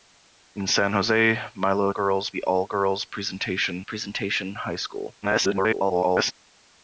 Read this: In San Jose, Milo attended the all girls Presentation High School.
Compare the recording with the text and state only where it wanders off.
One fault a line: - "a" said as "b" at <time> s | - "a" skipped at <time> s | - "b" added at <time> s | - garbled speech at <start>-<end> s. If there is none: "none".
- "attended" said as "girls" at 1.9 s
- "Presentation" added at 3.8 s
- garbled speech at 5.2-6.3 s